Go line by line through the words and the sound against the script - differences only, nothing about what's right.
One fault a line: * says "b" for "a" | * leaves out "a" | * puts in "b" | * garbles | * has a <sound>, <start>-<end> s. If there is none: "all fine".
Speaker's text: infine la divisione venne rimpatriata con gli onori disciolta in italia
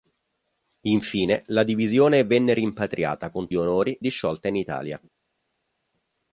all fine